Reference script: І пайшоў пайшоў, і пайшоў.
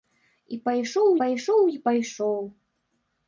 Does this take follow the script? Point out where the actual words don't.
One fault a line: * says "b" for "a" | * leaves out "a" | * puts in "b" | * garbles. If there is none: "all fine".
all fine